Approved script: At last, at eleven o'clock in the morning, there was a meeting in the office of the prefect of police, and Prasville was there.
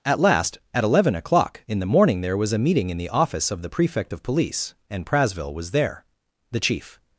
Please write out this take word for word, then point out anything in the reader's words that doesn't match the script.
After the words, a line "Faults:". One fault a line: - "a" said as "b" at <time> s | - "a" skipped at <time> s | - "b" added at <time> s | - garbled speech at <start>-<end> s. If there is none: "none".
At last, at eleven o'clock in the morning, there was a meeting in the office of the prefect of police, and Prasville was there. The chief
Faults:
- "The chief" added at 6.5 s